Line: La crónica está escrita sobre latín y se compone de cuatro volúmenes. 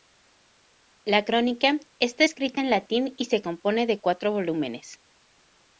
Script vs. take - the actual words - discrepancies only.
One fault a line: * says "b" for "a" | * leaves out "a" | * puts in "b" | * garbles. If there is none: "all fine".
* says "en" for "sobre"